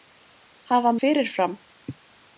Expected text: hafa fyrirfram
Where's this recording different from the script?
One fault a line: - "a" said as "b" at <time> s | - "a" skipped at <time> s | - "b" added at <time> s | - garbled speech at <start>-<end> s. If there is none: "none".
none